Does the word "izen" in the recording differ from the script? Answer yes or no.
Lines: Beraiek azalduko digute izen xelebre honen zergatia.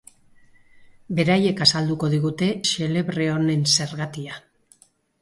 yes